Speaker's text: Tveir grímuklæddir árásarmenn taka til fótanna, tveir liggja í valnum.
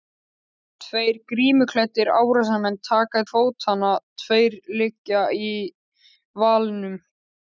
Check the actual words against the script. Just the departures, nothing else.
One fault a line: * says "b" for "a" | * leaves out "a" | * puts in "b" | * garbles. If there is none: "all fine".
* leaves out "til"